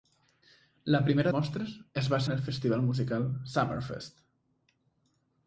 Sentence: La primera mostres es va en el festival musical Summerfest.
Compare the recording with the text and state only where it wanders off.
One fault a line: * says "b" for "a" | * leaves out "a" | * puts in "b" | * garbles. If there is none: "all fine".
all fine